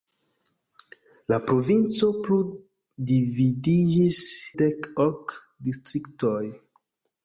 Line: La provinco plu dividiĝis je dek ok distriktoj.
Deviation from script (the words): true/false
true